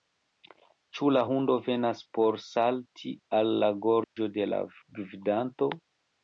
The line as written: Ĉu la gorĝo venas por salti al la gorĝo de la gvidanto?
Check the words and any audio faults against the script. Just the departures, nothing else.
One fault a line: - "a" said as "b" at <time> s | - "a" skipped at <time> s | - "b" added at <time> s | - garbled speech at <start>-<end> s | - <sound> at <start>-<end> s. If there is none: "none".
- "gorĝo" said as "hundo" at 1.3 s
- dropout at 4.0-4.2 s